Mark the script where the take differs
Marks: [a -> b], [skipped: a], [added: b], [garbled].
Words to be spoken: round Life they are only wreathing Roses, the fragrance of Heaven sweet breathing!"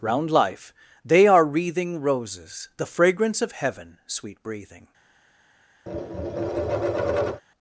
round Life they are [skipped: only] wreathing Roses, the fragrance of Heaven sweet breathing!"